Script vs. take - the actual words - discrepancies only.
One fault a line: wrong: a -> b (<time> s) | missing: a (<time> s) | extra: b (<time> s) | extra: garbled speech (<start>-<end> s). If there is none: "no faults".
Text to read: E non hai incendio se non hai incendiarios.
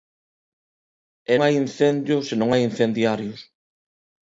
missing: non (1.4 s)